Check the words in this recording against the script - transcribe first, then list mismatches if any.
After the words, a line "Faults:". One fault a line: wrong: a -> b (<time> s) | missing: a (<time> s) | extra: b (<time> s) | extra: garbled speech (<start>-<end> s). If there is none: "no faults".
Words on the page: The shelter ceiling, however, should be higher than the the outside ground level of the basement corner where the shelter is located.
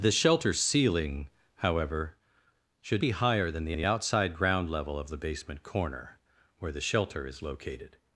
The shelter ceiling, however, should be higher than the the outside ground level of the basement corner where the shelter is located.
Faults:
no faults